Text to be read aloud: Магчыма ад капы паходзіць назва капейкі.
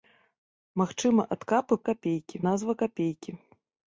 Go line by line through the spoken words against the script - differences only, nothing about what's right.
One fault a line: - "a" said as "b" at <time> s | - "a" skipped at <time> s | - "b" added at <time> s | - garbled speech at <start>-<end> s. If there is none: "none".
- "паходзіць" said as "капейкі" at 1.9 s